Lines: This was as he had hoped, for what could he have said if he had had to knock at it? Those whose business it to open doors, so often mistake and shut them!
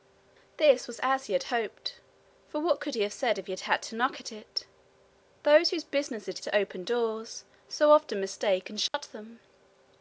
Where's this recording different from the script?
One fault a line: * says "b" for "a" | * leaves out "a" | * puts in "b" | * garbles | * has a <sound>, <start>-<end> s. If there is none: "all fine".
* has a dropout, 8.9-8.9 s